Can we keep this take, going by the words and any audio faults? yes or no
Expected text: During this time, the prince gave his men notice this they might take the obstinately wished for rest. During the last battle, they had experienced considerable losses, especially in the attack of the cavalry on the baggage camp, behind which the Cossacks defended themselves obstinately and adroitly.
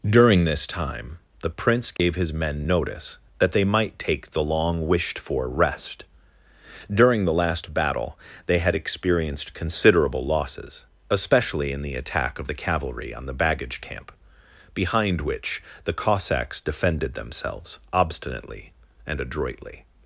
no